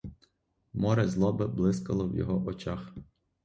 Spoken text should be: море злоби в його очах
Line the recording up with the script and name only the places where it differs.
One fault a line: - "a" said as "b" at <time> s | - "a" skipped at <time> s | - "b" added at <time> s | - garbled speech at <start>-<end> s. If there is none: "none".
- "блискало" added at 1.5 s